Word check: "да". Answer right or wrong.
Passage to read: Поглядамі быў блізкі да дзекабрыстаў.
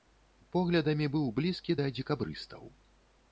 right